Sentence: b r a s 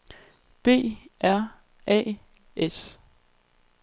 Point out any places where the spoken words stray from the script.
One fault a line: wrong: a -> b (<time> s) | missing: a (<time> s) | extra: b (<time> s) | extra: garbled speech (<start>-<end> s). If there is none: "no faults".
no faults